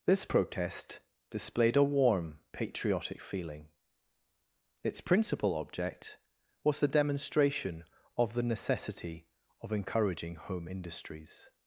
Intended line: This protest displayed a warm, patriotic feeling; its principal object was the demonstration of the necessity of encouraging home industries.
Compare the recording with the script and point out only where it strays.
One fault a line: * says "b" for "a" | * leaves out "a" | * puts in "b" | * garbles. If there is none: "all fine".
all fine